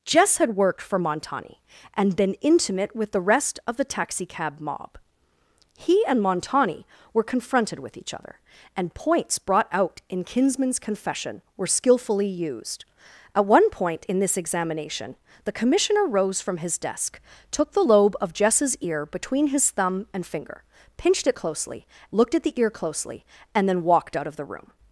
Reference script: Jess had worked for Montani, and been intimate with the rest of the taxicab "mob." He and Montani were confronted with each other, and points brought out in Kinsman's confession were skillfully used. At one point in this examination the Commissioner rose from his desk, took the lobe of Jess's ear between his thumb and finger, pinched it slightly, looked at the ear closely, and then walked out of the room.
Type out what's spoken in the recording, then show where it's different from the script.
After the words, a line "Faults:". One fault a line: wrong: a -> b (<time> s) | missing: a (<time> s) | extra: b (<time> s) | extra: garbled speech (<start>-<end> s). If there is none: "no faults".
Jess had worked for Montani, and been intimate with the rest of the taxicab "mob." He and Montani were confronted with each other, and points brought out in Kinsman's confession were skillfully used. At one point in this examination the Commissioner rose from his desk, took the lobe of Jess's ear between his thumb and finger, pinched it closely, looked at the ear closely, and then walked out of the room.
Faults:
wrong: slightly -> closely (21.3 s)